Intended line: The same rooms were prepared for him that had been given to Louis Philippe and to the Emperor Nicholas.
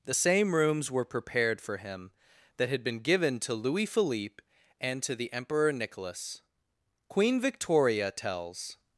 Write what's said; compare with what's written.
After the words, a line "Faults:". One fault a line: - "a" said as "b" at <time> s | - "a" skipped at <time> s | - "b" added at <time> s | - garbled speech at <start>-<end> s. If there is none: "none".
The same rooms were prepared for him that had been given to Louis Philippe and to the Emperor Nicholas. Queen Victoria tells
Faults:
- "Queen Victoria tells" added at 7.1 s